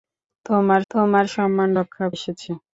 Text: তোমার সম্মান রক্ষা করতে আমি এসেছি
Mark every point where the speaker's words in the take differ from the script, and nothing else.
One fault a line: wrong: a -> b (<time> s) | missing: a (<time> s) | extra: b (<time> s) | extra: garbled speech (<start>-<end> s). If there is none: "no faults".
extra: তোমার (0.9 s)
missing: করতে আমি (2.1 s)